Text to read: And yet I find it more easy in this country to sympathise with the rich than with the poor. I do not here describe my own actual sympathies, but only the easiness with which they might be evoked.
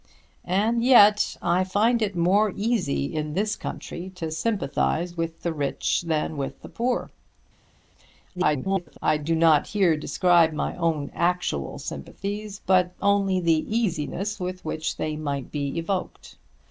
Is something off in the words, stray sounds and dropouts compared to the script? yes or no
yes